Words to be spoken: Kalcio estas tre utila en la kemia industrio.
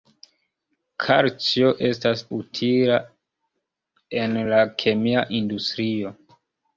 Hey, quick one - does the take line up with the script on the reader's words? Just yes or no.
no